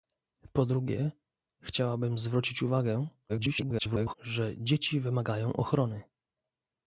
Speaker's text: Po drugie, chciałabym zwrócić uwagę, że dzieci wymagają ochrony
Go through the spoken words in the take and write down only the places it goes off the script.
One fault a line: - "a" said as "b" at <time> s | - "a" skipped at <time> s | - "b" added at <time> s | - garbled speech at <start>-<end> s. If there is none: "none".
- garbled speech at 3.3-4.1 s